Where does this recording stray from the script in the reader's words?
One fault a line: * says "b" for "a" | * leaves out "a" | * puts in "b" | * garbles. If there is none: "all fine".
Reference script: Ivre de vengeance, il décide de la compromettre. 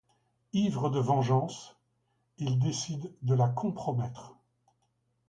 all fine